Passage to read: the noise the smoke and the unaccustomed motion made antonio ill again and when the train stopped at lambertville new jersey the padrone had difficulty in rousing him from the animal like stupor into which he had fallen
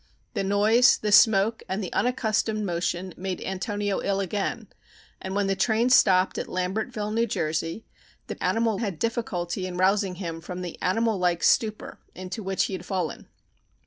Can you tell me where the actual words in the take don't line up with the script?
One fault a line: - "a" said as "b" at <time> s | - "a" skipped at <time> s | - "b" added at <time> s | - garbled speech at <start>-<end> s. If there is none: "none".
- "padrone" said as "animal" at 8.4 s